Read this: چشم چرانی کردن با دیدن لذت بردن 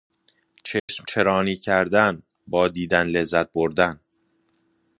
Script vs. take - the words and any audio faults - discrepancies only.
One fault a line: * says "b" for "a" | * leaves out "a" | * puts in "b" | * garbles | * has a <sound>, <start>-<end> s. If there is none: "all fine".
* has a dropout, 0.8-0.9 s